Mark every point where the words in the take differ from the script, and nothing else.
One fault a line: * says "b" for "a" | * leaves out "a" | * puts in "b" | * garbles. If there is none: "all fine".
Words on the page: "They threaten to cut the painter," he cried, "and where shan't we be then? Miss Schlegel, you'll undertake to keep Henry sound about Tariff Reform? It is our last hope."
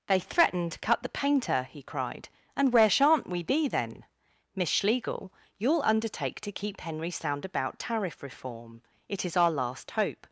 all fine